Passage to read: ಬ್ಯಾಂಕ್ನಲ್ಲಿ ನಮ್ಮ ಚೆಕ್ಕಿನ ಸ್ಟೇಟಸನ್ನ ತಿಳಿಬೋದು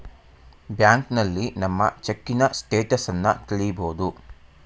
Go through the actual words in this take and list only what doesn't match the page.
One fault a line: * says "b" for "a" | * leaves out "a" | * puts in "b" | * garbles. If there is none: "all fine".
all fine